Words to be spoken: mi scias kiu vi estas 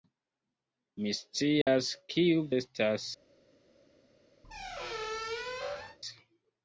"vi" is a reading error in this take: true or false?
true